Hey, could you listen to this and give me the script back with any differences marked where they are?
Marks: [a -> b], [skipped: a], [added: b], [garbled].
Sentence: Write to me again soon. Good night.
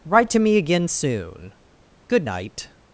Write to me again soon. Good night.